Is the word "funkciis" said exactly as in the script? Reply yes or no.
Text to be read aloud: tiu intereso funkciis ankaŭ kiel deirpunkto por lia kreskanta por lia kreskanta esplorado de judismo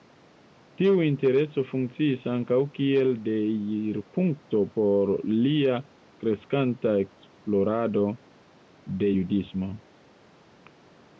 yes